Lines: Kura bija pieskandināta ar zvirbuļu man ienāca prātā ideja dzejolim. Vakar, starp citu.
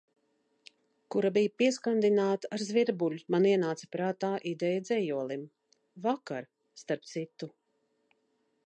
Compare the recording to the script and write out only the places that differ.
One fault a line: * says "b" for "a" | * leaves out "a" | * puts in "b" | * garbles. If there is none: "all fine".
all fine